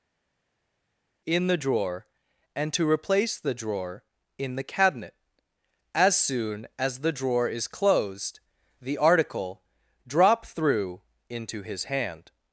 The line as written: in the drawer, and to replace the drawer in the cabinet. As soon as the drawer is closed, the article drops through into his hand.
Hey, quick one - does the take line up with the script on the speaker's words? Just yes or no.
no